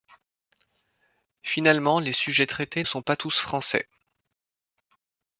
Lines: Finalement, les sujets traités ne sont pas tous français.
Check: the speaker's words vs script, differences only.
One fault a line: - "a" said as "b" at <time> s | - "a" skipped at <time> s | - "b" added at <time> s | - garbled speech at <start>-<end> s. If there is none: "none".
- "ne" skipped at 2.8 s